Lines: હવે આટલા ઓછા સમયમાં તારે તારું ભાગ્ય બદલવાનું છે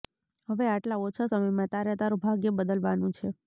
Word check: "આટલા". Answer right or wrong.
right